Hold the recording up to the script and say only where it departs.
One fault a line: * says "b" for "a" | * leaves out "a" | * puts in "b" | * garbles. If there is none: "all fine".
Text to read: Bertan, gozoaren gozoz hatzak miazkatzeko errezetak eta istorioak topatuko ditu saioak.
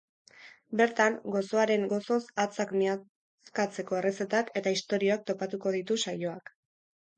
all fine